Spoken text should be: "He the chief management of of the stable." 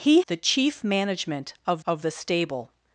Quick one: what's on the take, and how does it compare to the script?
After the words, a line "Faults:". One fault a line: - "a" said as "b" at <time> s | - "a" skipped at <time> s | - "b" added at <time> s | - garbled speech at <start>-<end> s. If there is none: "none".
"He the chief management of of the stable."
Faults:
none